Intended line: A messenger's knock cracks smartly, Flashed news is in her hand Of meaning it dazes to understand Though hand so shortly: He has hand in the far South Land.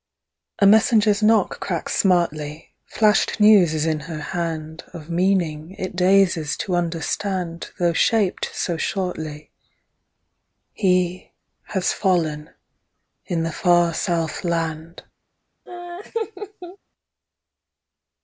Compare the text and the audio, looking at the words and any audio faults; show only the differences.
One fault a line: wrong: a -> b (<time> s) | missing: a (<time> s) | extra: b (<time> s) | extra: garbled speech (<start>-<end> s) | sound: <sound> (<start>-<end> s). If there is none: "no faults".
wrong: hand -> shaped (7.9 s)
wrong: hand -> fallen (11.9 s)
sound: laugh (15.7-16.8 s)